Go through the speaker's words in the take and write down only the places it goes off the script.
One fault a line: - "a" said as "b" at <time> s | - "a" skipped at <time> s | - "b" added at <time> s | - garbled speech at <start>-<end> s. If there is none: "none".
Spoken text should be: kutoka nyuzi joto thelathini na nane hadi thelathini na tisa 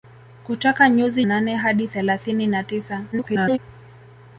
- "joto thelathini na" skipped at 1.2 s
- garbled speech at 3.1-3.6 s